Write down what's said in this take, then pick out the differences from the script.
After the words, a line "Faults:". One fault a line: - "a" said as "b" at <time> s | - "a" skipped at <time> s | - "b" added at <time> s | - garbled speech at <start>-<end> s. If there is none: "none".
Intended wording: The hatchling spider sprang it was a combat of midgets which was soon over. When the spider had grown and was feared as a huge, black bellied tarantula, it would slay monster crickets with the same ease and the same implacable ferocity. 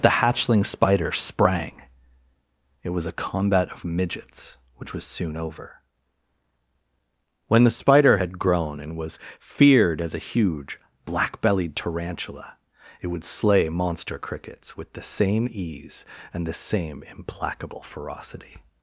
The hatchling spider sprang it was a combat of midgets which was soon over. When the spider had grown and was feared as a huge, black bellied tarantula, it would slay monster crickets with the same ease and the same implacable ferocity.
Faults:
none